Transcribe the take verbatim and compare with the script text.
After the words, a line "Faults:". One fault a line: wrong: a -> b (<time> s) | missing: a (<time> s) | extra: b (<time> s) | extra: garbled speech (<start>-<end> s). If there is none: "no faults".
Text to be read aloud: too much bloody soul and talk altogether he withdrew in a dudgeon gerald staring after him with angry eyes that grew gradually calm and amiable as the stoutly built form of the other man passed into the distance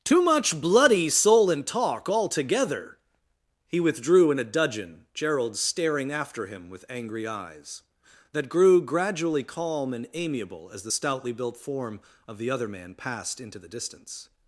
too much bloody soul and talk altogether he withdrew in a dudgeon gerald staring after him with angry eyes that grew gradually calm and amiable as the stoutly built form of the other man passed into the distance
Faults:
no faults